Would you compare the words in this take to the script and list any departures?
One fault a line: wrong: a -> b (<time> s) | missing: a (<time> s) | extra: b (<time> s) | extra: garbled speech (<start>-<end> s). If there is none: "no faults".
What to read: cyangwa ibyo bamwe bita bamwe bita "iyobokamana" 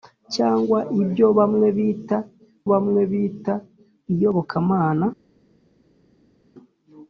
no faults